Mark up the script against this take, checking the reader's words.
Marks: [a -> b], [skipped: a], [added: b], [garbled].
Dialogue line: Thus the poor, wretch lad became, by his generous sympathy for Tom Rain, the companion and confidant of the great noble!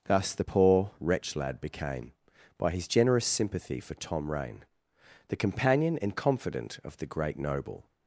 Thus the poor, wretch lad became, by his generous sympathy for Tom Rain, the companion and confidant of the great noble!